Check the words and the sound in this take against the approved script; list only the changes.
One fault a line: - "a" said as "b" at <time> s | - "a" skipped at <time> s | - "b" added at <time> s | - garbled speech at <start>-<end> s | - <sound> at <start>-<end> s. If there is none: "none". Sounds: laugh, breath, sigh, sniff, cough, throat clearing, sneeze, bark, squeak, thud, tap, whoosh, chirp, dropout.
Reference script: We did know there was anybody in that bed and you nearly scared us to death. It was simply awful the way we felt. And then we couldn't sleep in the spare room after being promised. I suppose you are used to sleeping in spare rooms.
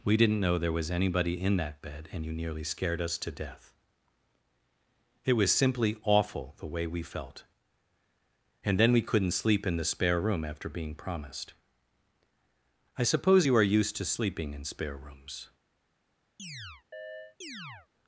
- "did" said as "didn't" at 0.2 s
- chirp at 16.4-17.9 s